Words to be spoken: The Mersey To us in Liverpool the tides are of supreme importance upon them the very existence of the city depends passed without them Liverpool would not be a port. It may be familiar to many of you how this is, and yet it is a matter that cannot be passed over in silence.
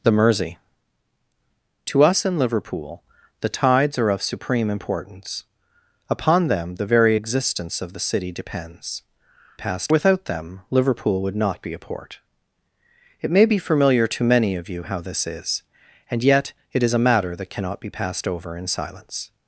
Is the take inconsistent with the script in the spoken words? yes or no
no